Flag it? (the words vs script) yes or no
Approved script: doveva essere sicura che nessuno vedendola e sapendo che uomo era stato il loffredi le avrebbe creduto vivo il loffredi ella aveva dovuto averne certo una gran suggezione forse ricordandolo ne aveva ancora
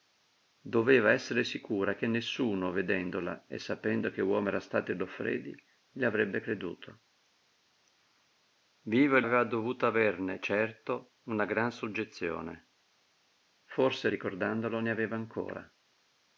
yes